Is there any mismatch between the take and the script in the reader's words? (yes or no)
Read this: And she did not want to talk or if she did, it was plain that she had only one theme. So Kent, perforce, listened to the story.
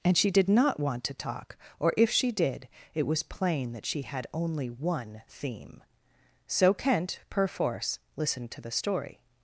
no